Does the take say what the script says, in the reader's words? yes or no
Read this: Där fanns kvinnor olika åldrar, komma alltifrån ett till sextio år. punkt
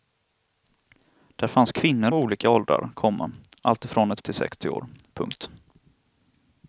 yes